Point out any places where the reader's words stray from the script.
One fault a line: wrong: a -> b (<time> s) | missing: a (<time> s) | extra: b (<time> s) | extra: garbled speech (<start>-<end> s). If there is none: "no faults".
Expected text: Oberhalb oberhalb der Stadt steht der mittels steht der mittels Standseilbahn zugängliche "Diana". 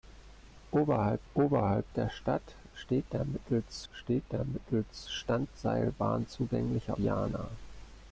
no faults